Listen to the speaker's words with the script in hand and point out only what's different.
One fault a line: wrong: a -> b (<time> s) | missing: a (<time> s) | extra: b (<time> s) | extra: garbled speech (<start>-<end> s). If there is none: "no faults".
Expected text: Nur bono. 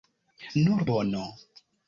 no faults